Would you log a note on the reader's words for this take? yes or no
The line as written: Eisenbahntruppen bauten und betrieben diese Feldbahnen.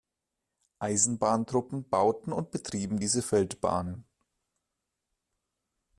no